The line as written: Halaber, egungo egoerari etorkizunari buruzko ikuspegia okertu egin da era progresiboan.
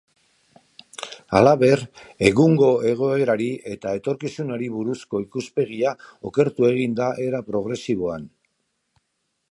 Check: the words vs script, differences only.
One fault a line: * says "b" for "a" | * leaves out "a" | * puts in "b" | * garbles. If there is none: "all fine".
* puts in "eta"